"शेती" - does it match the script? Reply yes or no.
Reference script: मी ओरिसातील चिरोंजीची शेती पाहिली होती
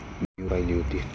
no